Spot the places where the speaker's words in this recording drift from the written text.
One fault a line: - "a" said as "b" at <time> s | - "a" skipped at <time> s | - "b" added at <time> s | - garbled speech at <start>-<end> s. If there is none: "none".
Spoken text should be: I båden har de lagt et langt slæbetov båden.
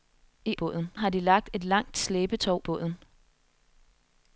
none